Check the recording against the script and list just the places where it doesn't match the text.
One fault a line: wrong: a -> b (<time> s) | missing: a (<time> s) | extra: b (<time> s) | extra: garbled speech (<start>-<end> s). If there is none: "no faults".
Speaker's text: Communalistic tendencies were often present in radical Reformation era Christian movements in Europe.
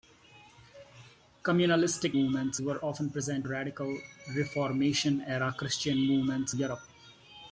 wrong: tendencies -> movements (2.1 s)
missing: in (3.5 s)
missing: in (6.5 s)